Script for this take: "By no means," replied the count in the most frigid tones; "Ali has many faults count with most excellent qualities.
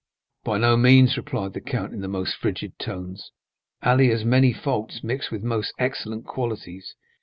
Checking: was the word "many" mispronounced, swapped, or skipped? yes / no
no